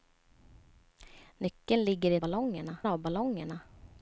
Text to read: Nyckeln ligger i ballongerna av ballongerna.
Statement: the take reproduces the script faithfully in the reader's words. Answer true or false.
true